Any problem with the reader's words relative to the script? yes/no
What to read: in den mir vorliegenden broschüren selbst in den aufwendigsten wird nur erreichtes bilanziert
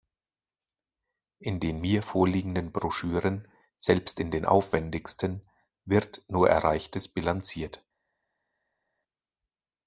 no